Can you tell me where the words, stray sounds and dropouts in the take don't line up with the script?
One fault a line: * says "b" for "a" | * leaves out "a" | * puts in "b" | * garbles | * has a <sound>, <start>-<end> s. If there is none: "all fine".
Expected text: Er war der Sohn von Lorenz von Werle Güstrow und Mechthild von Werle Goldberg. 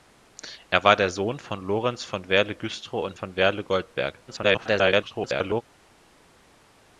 * leaves out "Mechthild"
* garbles